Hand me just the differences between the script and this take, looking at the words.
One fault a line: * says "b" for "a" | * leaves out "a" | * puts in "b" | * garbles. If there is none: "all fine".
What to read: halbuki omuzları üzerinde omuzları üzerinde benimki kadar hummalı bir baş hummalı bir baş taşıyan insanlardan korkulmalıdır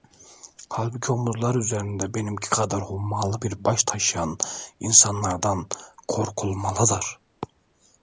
* leaves out "omuzları üzerinde"
* leaves out "hummalı bir baş"